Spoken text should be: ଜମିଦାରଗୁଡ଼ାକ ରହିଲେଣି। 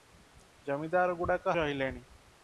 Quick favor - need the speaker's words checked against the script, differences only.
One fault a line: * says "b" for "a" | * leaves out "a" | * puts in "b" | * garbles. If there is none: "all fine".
all fine